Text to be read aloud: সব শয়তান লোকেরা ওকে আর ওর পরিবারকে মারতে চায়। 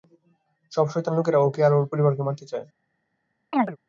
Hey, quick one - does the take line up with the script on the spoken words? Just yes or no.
yes